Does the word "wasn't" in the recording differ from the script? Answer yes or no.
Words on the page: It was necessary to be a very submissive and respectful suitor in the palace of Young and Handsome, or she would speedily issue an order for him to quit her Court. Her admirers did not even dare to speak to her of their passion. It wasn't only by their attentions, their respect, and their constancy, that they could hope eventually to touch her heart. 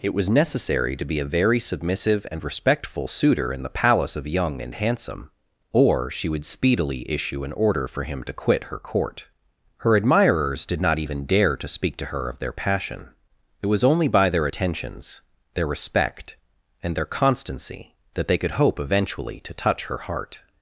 yes